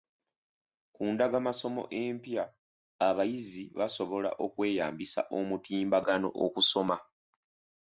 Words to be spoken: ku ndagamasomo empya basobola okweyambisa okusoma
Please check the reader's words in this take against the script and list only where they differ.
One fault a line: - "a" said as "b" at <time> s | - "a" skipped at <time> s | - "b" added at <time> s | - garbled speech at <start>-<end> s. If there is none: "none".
- "abayizi" added at 3.1 s
- "omutimbagano" added at 5.4 s